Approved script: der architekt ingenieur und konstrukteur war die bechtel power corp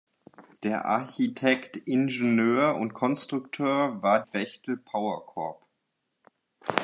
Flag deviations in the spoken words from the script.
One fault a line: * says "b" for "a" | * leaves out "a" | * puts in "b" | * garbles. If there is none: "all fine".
* leaves out "die"